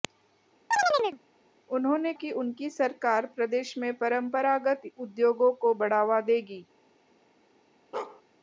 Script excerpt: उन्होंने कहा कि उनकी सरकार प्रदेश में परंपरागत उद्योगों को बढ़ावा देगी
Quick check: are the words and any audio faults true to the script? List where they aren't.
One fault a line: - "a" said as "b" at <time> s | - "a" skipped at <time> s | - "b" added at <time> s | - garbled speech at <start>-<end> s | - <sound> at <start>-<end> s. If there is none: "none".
- chirp at 0.7-1.2 s
- "कहा" skipped at 2.1 s
- bark at 7.9-8.2 s